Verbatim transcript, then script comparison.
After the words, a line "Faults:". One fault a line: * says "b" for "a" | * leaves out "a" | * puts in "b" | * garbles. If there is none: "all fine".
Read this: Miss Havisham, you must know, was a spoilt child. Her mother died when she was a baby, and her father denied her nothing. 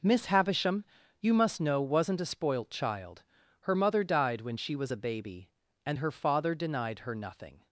Miss Havisham, you must know, wasn't a spoilt child. Her mother died when she was a baby, and her father denied her nothing.
Faults:
* says "wasn't" for "was"